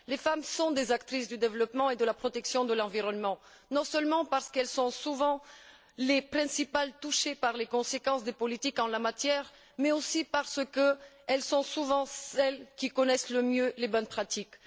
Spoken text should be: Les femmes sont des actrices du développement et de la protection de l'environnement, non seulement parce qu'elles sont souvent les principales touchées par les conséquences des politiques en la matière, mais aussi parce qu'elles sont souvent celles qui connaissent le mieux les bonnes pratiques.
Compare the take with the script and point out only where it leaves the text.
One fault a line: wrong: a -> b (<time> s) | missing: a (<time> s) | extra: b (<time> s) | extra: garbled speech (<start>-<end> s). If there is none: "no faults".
no faults